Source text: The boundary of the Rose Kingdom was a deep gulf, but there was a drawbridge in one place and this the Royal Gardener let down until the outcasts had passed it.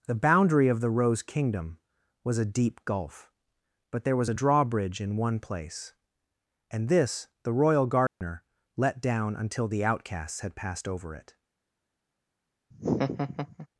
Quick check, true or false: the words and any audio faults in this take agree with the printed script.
false